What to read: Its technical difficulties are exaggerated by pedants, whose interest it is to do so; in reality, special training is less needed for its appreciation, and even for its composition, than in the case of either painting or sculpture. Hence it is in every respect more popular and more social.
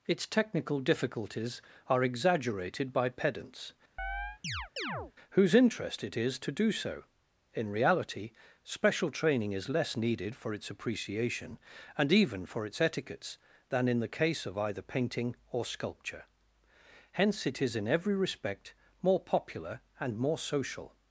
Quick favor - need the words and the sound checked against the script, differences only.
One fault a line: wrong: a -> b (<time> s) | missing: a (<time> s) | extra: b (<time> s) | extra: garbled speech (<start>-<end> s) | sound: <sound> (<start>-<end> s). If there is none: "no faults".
sound: chirp (4.0-5.1 s)
wrong: composition -> etiquettes (12.8 s)